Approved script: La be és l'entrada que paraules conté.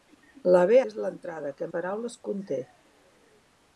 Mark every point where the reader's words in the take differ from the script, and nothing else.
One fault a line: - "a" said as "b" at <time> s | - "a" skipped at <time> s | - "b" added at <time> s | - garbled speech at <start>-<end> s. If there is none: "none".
none